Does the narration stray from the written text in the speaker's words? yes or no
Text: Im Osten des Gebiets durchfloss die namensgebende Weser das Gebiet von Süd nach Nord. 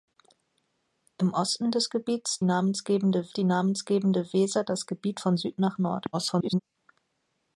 yes